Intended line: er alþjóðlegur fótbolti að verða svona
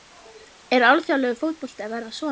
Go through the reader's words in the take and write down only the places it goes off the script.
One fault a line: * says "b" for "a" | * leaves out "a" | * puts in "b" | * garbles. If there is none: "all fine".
all fine